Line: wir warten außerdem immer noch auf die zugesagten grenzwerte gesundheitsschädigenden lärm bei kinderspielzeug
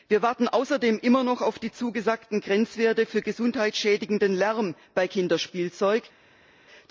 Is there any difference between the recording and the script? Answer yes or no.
yes